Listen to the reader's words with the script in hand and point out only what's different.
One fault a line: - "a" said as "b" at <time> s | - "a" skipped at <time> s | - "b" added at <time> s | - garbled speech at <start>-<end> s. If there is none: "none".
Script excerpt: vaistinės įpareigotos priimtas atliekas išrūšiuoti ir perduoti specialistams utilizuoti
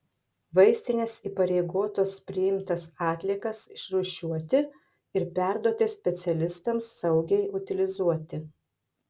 - "saugiai" added at 7.0 s